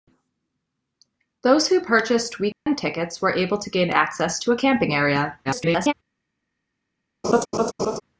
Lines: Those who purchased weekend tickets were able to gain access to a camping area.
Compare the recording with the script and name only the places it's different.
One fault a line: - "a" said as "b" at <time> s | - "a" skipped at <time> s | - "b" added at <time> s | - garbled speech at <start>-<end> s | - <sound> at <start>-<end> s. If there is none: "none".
- dropout at 2.5-2.7 s
- garbled speech at 5.4-5.9 s
- laugh at 7.2-8.0 s